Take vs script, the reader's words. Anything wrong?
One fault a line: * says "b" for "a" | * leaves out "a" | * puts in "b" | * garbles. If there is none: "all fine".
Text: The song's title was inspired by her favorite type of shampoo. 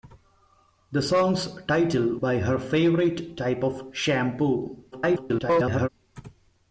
* leaves out "was inspired"
* garbles